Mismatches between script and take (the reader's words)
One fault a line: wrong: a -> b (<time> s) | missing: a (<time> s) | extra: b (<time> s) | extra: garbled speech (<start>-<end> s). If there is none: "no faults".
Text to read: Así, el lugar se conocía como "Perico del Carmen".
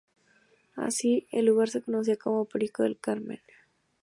no faults